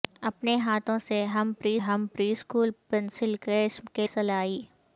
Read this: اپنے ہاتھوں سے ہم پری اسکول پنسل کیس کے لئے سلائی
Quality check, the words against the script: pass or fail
fail